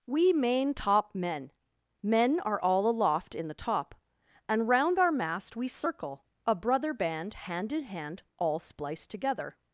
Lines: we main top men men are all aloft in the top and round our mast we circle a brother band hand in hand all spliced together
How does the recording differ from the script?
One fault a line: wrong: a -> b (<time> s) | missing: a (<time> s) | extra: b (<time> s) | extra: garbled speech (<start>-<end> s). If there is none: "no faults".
no faults